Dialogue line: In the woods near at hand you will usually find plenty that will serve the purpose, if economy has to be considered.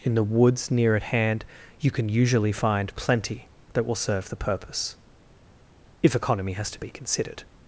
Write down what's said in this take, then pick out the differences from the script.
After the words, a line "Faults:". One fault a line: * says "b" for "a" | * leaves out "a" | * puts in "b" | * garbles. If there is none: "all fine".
In the woods near at hand you can usually find plenty that will serve the purpose, if economy has to be considered.
Faults:
* says "can" for "will"